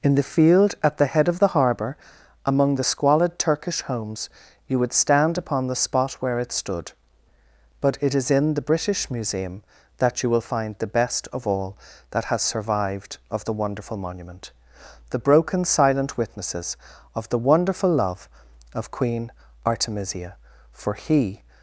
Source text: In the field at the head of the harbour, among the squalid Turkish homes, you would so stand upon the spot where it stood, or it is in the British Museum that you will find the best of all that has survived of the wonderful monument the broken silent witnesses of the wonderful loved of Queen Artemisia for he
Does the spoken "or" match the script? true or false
false